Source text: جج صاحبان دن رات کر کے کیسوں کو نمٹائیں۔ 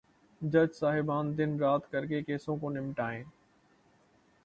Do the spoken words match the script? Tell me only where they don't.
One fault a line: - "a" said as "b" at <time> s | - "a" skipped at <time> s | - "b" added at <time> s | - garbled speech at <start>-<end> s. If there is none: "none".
none